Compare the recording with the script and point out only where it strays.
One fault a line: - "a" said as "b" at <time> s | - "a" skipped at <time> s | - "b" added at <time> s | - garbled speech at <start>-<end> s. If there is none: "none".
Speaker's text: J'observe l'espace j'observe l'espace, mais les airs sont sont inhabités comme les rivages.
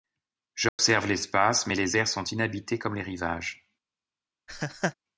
- "j'observe l'espace" skipped at 1.7 s
- "sont" skipped at 2.2 s